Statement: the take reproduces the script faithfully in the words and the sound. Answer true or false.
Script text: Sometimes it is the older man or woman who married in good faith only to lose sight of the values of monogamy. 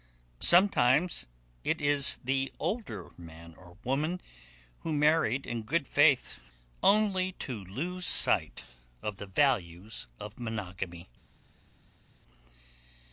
true